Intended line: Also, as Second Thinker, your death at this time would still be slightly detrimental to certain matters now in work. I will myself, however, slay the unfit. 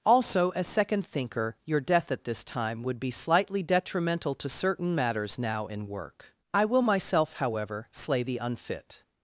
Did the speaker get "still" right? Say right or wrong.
wrong